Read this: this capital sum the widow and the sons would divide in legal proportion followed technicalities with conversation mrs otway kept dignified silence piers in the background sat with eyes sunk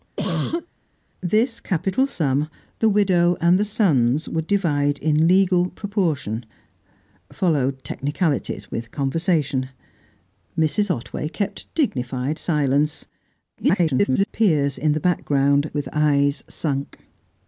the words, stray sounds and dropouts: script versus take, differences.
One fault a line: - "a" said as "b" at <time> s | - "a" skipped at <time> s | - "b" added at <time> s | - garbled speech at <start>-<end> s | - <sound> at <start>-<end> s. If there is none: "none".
- cough at 0.2-0.7 s
- garbled speech at 13.6-14.3 s
- "sat" skipped at 15.7 s